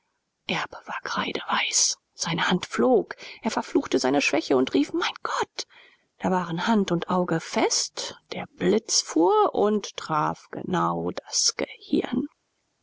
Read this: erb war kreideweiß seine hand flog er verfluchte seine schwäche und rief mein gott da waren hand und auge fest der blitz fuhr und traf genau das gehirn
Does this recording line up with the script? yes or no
yes